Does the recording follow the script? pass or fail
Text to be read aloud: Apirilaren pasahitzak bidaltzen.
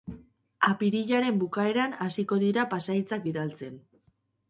fail